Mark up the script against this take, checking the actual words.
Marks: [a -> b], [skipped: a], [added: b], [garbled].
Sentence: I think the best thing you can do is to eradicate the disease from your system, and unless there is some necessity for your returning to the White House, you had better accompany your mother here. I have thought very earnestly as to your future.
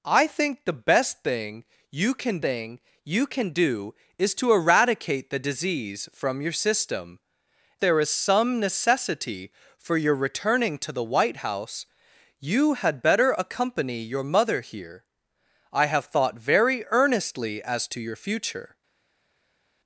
I think the best thing you can [added: thing you can] do is to eradicate the disease from your system, [skipped: and unless] there is some necessity for your returning to the White House, you had better accompany your mother here. I have thought very earnestly as to your future.